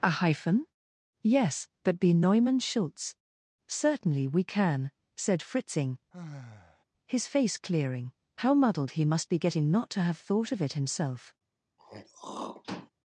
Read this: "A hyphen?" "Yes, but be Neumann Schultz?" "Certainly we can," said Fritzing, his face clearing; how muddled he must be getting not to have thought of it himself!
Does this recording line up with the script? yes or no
yes